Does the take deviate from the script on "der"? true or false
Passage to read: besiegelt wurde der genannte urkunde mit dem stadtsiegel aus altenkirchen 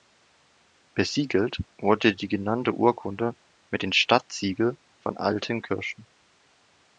true